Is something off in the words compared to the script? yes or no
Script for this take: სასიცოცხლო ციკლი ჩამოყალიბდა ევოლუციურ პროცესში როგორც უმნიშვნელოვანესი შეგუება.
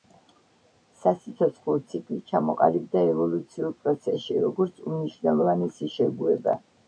no